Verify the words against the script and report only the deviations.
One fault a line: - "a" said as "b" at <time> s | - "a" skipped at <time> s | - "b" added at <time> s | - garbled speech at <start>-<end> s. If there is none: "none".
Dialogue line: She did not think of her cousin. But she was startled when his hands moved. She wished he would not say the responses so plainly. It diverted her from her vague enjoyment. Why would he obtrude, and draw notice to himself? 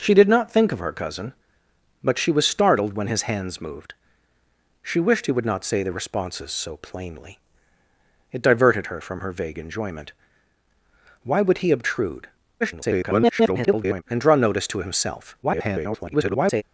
- garbled speech at 12.6-14.0 s
- garbled speech at 15.4-16.6 s